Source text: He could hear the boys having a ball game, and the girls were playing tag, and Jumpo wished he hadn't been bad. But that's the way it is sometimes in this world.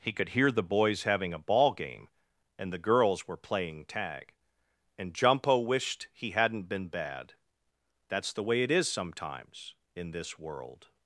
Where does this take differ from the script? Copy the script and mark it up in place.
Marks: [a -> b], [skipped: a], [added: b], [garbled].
He could hear the boys having a ball game, and the girls were playing tag, and Jumpo wished he hadn't been bad. [skipped: But] that's the way it is sometimes in this world.